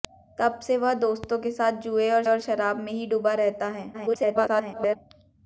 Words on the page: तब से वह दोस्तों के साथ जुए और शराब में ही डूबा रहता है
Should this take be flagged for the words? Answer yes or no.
yes